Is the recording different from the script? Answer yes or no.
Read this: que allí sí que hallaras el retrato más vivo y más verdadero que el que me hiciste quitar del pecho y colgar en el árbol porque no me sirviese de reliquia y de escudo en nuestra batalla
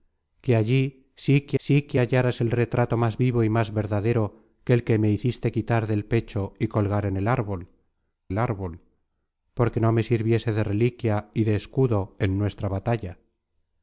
yes